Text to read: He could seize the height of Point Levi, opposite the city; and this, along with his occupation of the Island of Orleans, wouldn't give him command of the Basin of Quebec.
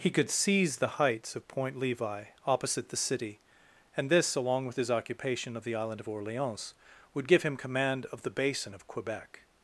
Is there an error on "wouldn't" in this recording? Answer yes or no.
yes